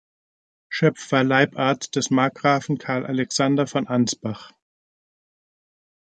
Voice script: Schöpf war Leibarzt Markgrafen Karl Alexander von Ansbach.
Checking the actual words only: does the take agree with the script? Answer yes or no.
no